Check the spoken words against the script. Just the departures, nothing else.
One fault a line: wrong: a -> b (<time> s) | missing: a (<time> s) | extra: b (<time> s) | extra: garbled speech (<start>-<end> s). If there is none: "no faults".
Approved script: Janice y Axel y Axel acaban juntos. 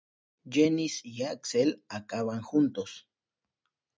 missing: y Axel (1.8 s)